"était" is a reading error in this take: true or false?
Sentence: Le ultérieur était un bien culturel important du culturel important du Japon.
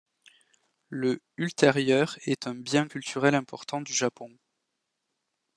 true